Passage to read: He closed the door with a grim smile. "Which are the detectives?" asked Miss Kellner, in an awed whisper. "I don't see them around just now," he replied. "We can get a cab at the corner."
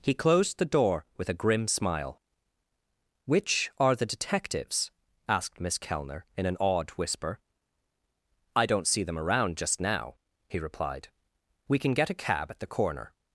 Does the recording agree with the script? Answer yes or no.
yes